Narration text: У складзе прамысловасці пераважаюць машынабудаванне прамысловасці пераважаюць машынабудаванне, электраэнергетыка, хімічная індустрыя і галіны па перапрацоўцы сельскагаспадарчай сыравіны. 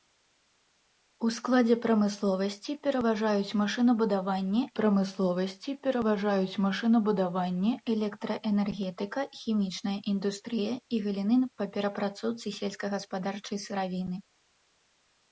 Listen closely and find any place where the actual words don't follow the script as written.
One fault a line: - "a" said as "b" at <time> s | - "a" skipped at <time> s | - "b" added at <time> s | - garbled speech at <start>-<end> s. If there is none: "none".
none